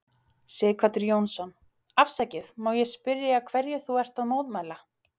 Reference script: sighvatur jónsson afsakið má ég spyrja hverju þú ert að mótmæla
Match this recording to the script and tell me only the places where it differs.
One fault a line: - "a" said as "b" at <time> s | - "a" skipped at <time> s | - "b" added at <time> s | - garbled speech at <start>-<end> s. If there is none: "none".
none